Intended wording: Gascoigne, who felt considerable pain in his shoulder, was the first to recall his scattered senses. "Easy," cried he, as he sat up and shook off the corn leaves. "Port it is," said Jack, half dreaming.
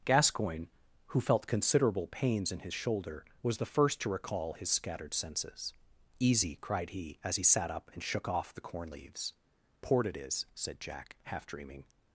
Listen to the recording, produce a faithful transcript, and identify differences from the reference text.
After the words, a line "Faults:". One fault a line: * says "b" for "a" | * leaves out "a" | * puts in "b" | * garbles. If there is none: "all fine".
Gascoigne, who felt considerable pains in his shoulder, was the first to recall his scattered senses. "Easy," cried he, as he sat up and shook off the corn leaves. "Port it is," said Jack, half dreaming.
Faults:
* says "pains" for "pain"